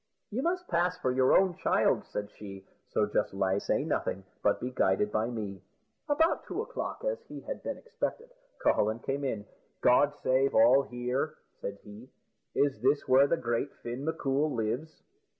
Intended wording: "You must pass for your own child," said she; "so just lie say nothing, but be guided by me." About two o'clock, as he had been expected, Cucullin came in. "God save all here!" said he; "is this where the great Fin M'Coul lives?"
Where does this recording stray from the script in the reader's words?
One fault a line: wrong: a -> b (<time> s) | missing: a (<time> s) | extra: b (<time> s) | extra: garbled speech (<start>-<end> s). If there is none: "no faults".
no faults